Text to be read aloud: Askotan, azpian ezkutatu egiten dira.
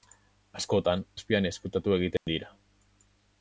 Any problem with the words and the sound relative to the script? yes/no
yes